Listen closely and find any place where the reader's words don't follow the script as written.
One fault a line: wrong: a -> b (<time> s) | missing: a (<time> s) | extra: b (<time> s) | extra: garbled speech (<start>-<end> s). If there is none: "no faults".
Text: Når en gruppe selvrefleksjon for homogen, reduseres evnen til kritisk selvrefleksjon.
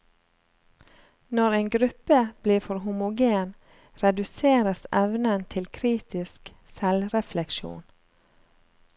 wrong: selvrefleksjon -> blir (2.4 s)